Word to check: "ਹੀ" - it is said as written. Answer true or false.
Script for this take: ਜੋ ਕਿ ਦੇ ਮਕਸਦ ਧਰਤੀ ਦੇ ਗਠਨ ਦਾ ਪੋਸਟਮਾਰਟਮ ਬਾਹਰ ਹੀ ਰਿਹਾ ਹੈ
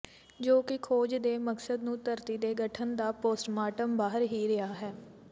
true